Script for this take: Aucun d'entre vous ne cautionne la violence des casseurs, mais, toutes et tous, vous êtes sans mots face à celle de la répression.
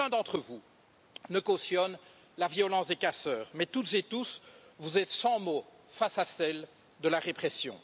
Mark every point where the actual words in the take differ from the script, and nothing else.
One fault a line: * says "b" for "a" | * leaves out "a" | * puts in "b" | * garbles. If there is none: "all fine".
all fine